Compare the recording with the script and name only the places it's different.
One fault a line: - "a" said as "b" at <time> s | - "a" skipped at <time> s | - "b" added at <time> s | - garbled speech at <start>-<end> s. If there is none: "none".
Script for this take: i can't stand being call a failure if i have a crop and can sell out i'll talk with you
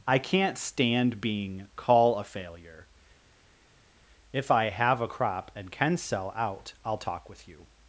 none